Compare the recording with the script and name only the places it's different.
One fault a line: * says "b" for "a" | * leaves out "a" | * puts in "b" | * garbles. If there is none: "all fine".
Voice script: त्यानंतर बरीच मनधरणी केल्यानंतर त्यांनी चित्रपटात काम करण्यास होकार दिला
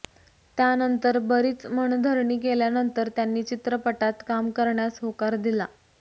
all fine